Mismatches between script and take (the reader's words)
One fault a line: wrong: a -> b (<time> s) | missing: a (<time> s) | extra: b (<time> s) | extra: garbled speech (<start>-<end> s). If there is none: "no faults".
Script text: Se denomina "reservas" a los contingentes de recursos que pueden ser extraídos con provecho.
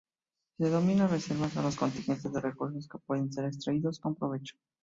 no faults